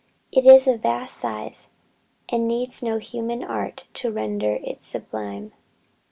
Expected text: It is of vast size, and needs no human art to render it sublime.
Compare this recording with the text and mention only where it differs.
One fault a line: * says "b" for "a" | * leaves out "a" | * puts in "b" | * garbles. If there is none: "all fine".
all fine